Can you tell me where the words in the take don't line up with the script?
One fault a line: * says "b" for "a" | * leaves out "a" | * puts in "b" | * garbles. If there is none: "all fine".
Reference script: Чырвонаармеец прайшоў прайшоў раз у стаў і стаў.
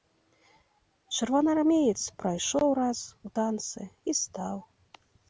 * leaves out "прайшоў"
* says "танцы" for "стаў"